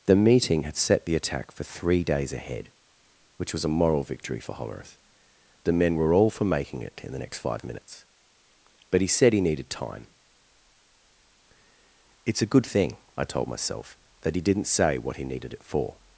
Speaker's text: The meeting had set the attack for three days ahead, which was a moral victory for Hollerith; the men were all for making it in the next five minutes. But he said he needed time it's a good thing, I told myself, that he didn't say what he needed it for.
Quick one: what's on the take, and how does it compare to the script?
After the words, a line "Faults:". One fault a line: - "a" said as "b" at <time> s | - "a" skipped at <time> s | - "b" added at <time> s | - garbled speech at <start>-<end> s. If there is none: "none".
The meeting had set the attack for three days ahead, which was a moral victory for Hollerith; the men were all for making it in the next five minutes. But he said he needed time it's a good thing, I told myself, that he didn't say what he needed it for.
Faults:
none